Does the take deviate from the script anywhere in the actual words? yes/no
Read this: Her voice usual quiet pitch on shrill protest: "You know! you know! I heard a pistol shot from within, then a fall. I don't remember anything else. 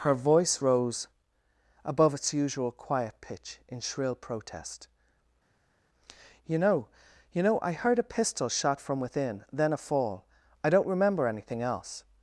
yes